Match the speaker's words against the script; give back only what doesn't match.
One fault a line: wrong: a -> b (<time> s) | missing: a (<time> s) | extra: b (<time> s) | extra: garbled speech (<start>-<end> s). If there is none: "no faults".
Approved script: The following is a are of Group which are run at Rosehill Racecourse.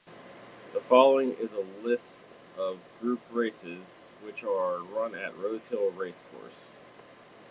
wrong: are -> list (1.9 s)
extra: races (3.3 s)